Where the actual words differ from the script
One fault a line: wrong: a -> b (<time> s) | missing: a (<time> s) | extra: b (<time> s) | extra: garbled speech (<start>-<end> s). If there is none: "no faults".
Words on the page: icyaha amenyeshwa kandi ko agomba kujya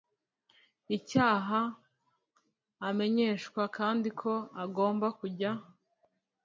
no faults